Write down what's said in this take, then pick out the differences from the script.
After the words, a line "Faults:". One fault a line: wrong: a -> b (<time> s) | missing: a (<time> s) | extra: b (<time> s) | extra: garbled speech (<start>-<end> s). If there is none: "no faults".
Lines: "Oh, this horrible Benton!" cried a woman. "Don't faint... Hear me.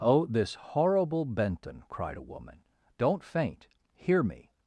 "Oh, this horrible Benton!" cried a woman. "Don't faint... Hear me.
Faults:
no faults